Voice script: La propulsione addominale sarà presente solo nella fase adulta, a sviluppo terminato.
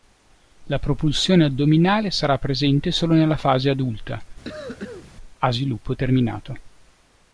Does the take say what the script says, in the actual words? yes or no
yes